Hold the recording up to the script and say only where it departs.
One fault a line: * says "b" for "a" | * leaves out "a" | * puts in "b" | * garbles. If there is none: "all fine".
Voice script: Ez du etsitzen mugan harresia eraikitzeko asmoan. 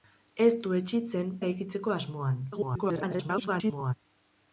* leaves out "mugan harresia"
* garbles